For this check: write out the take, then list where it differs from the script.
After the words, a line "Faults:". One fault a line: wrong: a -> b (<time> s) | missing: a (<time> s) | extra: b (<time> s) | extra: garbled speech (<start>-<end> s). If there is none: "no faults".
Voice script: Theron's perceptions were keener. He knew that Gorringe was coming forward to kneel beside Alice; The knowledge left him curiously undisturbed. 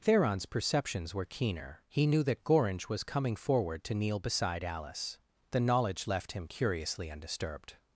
Theron's perceptions were keener. He knew that Gorringe was coming forward to kneel beside Alice; The knowledge left him curiously undisturbed.
Faults:
no faults